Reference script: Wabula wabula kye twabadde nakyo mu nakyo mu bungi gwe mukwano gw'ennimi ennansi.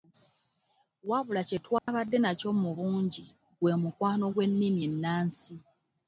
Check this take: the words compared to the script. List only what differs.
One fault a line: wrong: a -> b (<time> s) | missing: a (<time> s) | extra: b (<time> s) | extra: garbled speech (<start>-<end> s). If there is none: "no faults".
missing: wabula (1.4 s)
missing: nakyo mu (2.7 s)